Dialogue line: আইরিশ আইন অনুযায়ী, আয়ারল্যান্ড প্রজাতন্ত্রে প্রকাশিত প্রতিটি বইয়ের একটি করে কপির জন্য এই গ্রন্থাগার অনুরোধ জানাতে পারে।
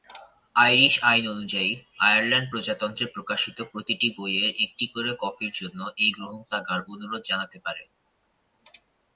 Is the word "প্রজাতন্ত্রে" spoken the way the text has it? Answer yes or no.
yes